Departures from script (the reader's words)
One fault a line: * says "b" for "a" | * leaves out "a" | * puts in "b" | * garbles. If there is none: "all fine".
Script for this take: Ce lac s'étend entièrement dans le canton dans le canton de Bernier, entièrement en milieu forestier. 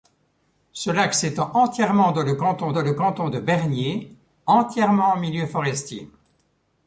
all fine